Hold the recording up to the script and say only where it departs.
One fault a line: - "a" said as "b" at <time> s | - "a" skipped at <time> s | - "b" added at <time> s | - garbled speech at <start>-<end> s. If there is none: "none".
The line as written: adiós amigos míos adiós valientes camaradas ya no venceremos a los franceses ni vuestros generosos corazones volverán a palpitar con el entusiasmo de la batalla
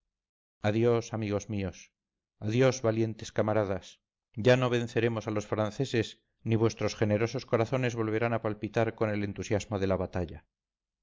none